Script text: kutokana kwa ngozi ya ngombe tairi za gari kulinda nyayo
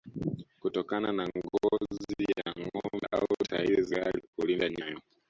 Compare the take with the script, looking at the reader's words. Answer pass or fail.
fail